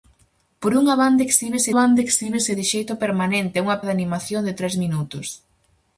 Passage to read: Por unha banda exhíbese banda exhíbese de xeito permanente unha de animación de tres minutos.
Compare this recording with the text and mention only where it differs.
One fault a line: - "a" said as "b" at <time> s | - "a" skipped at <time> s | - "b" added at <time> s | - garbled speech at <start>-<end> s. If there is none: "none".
none